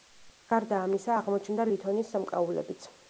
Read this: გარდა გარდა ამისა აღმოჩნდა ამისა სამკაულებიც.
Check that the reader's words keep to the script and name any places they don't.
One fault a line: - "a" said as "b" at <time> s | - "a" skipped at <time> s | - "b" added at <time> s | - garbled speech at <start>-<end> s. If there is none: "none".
- "გარდა" skipped at 0.8 s
- "ამისა" said as "ლითონის" at 1.7 s